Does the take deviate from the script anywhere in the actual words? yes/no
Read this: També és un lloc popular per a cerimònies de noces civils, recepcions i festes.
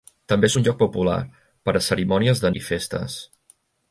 yes